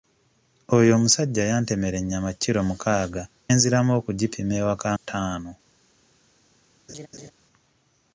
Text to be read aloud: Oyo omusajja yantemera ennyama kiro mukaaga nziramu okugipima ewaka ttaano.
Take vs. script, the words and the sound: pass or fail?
fail